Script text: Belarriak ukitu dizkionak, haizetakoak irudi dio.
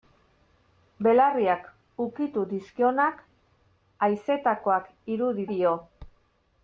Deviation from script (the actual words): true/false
false